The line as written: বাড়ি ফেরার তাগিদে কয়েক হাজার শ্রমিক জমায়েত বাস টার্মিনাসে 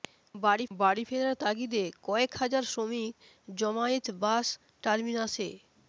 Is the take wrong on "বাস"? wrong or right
right